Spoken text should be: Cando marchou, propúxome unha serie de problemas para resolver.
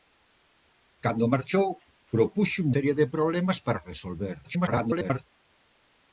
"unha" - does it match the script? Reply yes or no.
no